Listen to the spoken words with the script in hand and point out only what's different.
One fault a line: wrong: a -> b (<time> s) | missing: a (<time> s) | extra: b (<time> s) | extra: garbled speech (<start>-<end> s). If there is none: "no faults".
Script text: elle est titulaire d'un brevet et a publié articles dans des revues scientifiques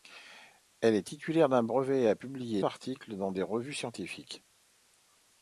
no faults